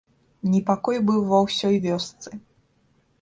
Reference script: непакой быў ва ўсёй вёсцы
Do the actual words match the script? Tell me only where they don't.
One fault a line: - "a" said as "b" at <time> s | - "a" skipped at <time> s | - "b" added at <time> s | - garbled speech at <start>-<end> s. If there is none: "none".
none